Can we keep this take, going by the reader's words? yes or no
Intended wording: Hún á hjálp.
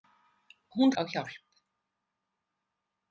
yes